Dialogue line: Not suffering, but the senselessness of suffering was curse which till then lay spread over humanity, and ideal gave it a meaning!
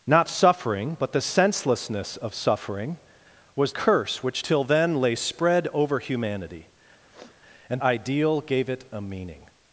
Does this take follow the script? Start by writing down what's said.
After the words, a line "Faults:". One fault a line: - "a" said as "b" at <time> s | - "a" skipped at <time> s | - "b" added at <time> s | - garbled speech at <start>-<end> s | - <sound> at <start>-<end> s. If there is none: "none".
Not suffering, but the senselessness of suffering was curse which till then lay spread over humanity, and ideal gave it a meaning!
Faults:
- sniff at 7.1-7.4 s